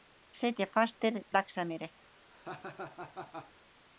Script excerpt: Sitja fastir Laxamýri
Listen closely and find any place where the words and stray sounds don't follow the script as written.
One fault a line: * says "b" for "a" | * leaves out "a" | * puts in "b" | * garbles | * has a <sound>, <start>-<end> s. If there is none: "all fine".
* has a laugh, 2.3-3.5 s